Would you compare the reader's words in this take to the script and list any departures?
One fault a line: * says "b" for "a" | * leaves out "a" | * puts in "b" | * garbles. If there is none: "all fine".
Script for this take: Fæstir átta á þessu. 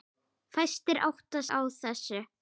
all fine